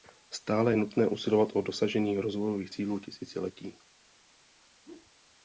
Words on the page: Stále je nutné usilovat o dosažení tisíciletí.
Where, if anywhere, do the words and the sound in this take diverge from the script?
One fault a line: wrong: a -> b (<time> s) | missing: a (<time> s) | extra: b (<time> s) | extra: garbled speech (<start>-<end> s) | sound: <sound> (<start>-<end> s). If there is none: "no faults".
extra: rozvojových cílů (2.2 s)
sound: whoosh (4.8-5.1 s)